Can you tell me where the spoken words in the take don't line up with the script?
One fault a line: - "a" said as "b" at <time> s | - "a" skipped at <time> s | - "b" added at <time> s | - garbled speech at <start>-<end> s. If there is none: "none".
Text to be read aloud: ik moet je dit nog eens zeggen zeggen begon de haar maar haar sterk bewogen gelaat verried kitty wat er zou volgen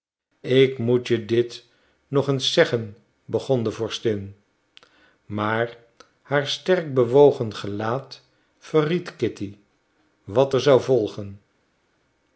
- "zeggen" skipped at 3.0 s
- "haar" said as "vorstin" at 3.7 s